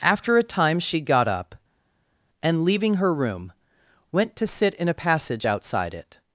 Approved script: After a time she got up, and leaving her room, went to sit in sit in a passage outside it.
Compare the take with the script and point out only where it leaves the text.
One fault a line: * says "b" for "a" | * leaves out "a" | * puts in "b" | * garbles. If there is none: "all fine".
* leaves out "sit in"